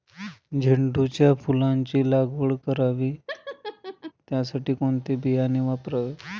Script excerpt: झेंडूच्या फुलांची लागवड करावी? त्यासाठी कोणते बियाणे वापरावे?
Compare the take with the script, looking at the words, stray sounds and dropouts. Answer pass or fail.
fail